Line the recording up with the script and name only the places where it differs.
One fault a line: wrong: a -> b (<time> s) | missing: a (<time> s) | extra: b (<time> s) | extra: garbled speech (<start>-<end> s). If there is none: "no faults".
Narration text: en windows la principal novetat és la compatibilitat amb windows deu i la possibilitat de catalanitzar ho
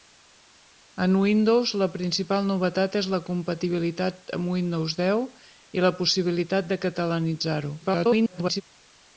extra: garbled speech (7.8-8.6 s)